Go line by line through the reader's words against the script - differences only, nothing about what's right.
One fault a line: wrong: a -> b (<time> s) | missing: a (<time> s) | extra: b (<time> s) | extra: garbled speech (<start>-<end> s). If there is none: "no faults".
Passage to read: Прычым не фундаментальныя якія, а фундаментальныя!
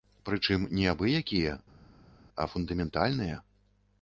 wrong: фундаментальныя -> абы (0.9 s)